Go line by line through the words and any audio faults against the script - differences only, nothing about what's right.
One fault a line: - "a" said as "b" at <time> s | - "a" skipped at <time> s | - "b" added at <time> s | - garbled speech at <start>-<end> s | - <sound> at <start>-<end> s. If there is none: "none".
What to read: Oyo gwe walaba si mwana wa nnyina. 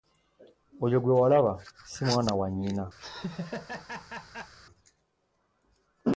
- laugh at 3.0-4.5 s